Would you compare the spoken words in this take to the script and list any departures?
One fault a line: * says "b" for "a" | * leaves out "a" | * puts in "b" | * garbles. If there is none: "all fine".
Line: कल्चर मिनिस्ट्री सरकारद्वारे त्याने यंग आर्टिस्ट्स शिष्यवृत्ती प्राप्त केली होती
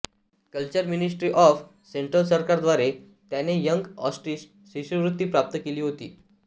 * puts in "ऑफ सेंट्रल"